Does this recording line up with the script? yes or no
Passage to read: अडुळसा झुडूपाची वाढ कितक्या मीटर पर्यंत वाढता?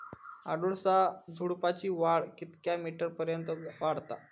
yes